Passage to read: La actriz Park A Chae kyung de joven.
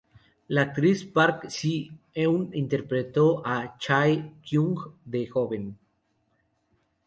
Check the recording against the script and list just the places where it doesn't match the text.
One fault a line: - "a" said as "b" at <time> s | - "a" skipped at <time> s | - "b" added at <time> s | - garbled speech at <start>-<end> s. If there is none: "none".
- "Si eun interpretó" added at 1.5 s